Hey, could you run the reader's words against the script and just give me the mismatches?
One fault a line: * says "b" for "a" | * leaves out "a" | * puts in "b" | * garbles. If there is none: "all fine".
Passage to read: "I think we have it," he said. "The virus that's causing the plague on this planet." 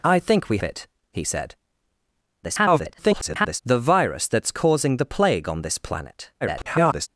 * leaves out "have"
* garbles
* garbles